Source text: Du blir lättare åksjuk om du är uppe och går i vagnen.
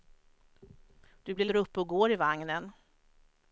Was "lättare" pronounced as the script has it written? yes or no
no